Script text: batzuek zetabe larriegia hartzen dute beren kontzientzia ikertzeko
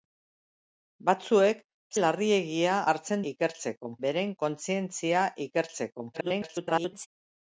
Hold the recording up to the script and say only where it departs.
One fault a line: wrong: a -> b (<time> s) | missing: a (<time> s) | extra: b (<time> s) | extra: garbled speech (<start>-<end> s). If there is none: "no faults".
missing: zetabe (1.6 s)
wrong: dute -> ikertzeko (3.3 s)
extra: garbled speech (6.1-7.1 s)